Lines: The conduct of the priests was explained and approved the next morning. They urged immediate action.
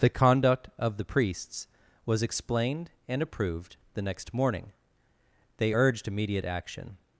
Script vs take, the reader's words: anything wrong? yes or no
no